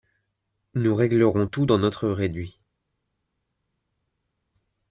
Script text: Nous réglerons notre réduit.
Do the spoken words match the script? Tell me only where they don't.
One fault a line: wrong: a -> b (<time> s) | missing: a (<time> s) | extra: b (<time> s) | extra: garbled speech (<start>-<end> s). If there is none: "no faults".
extra: tout dans (1.4 s)